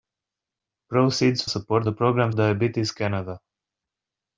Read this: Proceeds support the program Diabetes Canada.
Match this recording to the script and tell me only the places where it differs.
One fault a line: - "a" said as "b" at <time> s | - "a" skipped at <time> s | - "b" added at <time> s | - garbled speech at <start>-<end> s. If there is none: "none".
none